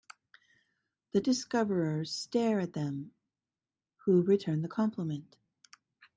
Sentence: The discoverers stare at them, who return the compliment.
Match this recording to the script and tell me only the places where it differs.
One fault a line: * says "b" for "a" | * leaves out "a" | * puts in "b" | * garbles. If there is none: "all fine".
all fine